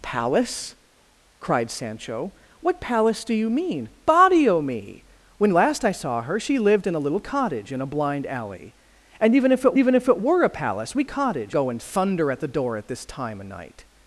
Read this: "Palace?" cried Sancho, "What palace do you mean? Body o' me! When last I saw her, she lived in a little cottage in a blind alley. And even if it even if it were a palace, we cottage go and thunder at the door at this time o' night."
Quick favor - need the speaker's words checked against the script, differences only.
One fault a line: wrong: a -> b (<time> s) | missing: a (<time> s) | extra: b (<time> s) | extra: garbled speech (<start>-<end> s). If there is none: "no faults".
no faults